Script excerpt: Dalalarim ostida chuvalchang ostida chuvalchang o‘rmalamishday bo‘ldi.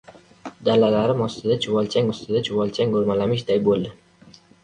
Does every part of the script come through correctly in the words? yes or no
yes